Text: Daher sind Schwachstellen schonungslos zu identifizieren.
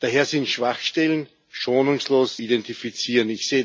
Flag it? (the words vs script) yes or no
yes